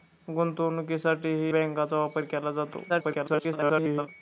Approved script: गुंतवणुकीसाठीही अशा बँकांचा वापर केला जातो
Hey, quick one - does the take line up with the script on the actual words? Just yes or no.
no